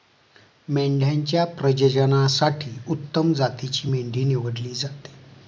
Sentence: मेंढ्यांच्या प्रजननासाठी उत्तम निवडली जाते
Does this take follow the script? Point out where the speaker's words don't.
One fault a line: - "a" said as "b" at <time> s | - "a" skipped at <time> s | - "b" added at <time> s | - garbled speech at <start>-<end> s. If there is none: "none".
- "जातीची मेंढी" added at 3.3 s